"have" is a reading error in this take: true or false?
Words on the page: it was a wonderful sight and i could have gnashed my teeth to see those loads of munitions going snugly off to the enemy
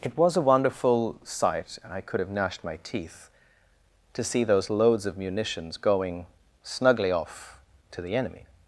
false